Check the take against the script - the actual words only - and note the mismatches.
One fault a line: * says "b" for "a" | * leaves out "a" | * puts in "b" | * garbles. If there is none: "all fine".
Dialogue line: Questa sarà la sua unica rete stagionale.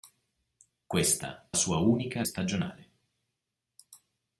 * leaves out "sarà la"
* leaves out "rete"